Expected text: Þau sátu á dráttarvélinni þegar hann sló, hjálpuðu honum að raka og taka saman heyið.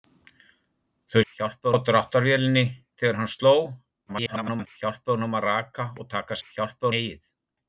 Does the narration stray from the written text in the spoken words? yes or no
yes